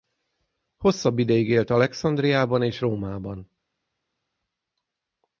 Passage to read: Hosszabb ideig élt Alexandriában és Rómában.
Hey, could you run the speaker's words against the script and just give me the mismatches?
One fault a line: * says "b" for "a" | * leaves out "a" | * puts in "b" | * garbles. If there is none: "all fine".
all fine